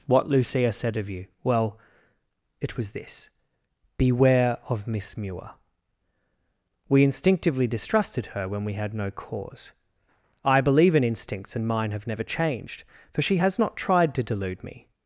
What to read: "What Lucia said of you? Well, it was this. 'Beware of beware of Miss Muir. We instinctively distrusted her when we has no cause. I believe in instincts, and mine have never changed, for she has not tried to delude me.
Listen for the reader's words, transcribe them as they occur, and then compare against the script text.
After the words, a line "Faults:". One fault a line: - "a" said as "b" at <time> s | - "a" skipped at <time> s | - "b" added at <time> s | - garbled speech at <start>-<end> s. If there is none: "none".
"What Lucia said of you? Well, it was this. 'Beware of Miss Muir. We instinctively distrusted her when we had no cause. I believe in instincts, and mine have never changed, for she has not tried to delude me.
Faults:
- "beware of" skipped at 4.9 s
- "has" said as "had" at 8.7 s